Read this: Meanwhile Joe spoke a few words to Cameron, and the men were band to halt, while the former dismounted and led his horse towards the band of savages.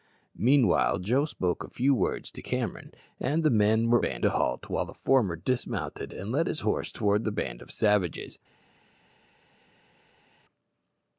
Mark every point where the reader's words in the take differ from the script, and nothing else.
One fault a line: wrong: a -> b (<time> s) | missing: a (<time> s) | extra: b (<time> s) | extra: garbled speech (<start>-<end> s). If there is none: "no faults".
no faults